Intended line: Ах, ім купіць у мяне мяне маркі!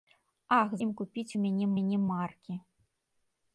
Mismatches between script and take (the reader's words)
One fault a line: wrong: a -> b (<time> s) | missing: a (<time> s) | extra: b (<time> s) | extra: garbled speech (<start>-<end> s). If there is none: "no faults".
no faults